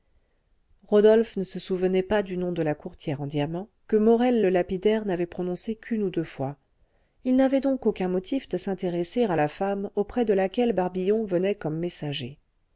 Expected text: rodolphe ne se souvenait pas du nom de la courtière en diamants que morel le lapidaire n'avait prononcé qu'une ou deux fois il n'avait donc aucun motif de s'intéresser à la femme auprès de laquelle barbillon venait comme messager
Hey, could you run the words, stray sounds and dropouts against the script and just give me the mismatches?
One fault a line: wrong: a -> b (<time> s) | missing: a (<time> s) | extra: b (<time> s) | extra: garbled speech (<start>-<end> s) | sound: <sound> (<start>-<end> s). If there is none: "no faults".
no faults